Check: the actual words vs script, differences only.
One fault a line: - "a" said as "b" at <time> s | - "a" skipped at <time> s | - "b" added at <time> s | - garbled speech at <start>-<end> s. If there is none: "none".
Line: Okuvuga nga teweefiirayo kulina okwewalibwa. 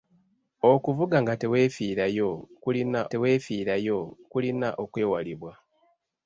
- "teweefiirayo kulina" added at 3.1 s